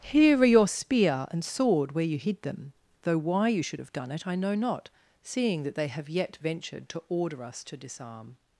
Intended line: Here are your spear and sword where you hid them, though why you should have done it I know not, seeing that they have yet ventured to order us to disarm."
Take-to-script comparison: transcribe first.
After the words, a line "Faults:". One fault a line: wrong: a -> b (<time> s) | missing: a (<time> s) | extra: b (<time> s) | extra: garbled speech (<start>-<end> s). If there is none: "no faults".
Here are your spear and sword where you hid them, though why you should have done it I know not, seeing that they have yet ventured to order us to disarm."
Faults:
no faults